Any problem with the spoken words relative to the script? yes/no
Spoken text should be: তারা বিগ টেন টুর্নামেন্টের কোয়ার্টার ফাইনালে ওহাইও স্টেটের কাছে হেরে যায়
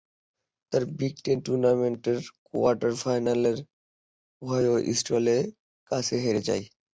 no